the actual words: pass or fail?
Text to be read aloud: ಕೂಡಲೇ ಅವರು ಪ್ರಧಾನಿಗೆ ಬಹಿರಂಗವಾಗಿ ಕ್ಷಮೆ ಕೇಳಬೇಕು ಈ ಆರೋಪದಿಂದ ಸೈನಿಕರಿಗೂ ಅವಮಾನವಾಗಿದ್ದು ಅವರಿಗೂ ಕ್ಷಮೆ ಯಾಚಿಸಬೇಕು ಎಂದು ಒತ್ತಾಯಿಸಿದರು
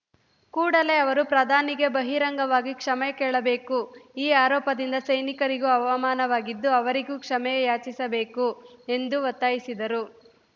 pass